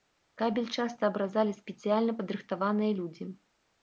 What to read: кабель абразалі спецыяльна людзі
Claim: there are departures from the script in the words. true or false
true